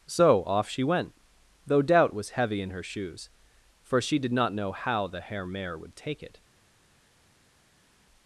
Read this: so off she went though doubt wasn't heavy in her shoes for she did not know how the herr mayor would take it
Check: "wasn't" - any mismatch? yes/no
yes